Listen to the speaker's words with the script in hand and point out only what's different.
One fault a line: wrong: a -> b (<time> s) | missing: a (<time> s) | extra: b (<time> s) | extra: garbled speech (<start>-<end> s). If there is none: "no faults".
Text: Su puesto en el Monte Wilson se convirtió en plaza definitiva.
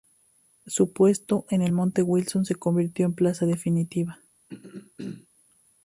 no faults